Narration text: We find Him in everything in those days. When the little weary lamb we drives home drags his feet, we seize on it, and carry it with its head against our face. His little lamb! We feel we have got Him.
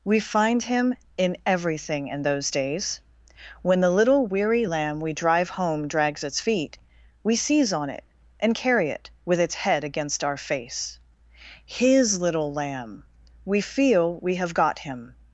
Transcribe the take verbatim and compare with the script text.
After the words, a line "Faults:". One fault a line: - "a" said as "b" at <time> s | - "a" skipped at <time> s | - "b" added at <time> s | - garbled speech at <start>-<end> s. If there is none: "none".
We find Him in everything in those days. When the little weary lamb we drive home drags its feet, we seize on it, and carry it with its head against our face. His little lamb! We feel we have got Him.
Faults:
- "drives" said as "drive" at 5.1 s
- "his" said as "its" at 6.2 s